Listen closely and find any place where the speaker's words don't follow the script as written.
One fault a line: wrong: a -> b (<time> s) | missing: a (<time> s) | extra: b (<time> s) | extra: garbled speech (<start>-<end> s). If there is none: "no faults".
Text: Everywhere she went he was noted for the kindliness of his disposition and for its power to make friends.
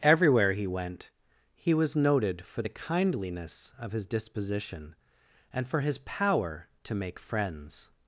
wrong: she -> he (0.5 s)
wrong: its -> his (5.8 s)